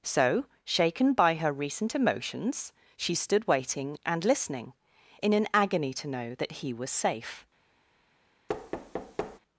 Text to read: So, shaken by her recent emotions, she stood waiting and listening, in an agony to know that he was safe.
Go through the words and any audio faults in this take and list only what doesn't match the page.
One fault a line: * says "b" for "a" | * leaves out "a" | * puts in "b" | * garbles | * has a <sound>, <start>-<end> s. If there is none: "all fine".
* has a thud, 8.5-9.4 s